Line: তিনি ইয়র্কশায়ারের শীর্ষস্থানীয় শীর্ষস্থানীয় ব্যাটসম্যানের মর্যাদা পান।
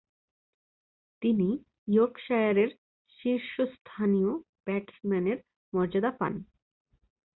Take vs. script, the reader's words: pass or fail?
fail